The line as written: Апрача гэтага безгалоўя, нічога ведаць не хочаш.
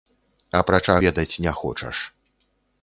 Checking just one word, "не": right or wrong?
right